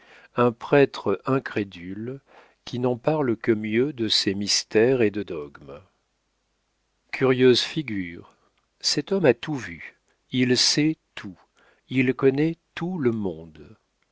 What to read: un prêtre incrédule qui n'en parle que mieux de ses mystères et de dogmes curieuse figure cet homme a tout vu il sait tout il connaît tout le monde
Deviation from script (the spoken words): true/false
false